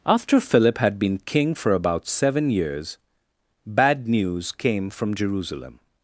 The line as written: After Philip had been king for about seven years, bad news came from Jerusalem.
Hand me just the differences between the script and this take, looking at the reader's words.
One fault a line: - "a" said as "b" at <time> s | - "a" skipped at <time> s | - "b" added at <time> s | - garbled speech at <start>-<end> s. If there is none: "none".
none